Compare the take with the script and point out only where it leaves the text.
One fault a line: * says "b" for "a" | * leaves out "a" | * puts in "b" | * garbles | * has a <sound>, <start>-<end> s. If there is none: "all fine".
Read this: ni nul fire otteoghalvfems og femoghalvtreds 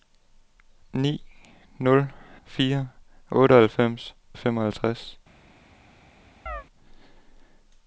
* has a chirp, 6.5-6.6 s